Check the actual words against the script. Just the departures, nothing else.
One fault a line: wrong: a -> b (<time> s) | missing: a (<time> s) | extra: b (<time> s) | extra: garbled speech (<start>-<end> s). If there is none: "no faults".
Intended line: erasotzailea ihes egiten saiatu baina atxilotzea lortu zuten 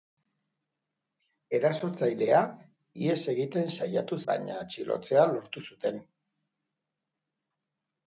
no faults